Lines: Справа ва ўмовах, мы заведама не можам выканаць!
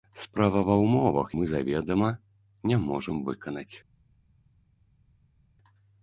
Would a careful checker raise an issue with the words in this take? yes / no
no